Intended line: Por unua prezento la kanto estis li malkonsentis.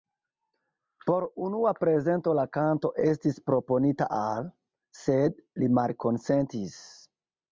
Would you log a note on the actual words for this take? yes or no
yes